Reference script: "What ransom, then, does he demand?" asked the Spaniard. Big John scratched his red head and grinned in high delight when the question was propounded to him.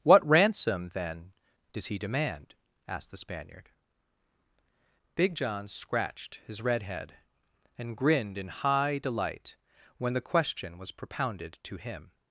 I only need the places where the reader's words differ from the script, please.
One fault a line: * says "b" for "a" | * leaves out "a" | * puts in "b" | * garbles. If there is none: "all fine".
all fine